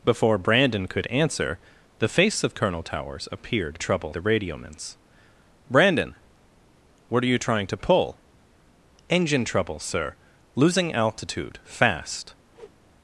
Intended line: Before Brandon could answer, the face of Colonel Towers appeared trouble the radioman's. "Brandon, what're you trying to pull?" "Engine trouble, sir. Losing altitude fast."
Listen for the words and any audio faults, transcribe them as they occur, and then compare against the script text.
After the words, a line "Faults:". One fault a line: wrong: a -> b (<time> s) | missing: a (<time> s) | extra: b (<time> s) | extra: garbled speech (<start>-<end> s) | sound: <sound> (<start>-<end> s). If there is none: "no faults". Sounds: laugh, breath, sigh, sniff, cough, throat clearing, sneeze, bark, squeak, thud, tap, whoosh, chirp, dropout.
Before Brandon could answer, the face of Colonel Towers appeared trouble the radioman's. "Brandon, what're you trying to pull?" "Engine trouble, sir. Losing altitude fast."
Faults:
sound: whoosh (12.5-12.8 s)